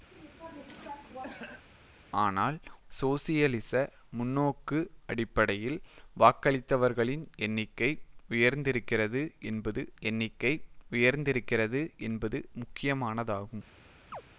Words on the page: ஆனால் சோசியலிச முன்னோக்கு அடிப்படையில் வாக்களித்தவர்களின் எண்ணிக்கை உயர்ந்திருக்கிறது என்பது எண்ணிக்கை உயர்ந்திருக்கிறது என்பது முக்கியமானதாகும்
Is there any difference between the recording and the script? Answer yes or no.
no